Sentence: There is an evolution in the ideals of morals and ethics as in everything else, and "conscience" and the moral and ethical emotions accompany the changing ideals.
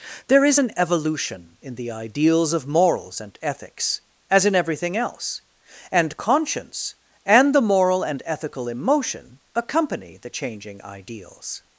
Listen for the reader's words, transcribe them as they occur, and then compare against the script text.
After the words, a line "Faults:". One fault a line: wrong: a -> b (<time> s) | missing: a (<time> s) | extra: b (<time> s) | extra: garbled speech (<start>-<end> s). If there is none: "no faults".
There is an evolution in the ideals of morals and ethics as in everything else, and "conscience" and the moral and ethical emotion accompany the changing ideals.
Faults:
wrong: emotions -> emotion (8.7 s)